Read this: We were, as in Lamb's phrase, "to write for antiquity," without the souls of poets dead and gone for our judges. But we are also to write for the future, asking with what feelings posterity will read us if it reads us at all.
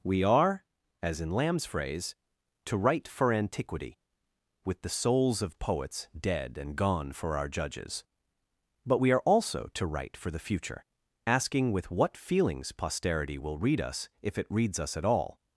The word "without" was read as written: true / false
false